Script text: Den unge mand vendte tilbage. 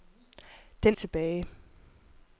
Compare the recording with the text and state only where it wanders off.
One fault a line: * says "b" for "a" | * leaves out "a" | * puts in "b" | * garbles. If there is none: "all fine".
* leaves out "unge mand vendte"